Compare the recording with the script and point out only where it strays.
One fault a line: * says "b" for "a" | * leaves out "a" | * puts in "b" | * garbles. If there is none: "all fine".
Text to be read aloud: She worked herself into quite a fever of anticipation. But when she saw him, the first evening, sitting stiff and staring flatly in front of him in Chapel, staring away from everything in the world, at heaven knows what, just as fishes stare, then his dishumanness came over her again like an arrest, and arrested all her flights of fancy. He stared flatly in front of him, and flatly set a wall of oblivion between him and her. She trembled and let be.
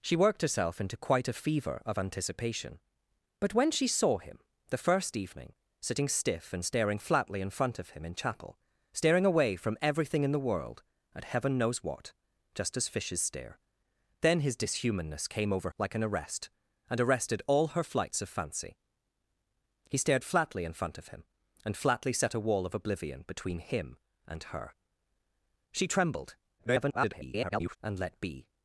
* leaves out "her again"
* garbles